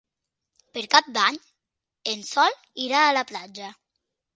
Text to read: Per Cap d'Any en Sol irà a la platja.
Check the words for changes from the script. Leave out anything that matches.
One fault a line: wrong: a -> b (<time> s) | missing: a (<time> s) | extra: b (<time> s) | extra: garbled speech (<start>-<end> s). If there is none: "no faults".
no faults